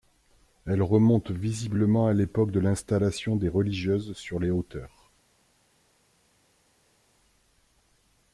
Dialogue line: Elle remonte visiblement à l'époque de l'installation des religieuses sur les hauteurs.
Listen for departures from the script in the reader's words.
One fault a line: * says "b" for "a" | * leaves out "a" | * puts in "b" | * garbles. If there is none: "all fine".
all fine